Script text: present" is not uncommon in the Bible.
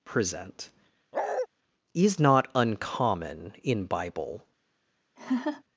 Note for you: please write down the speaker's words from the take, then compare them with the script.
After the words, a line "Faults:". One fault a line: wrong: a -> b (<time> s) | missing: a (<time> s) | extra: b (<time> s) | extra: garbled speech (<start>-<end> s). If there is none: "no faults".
present" is not uncommon in Bible.
Faults:
missing: the (3.8 s)